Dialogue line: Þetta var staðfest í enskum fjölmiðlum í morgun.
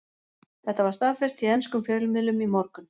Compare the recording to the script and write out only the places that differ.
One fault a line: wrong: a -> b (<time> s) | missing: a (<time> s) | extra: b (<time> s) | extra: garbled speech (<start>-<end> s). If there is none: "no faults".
no faults